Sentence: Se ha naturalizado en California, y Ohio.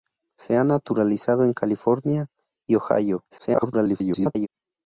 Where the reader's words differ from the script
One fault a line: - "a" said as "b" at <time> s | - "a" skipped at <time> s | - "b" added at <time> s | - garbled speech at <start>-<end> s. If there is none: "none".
- garbled speech at 3.3-4.5 s